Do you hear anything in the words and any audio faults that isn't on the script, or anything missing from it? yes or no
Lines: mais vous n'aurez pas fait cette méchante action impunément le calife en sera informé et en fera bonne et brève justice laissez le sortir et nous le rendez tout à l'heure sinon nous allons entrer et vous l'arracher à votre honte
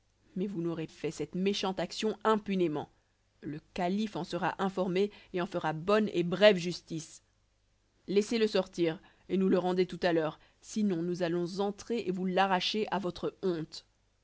yes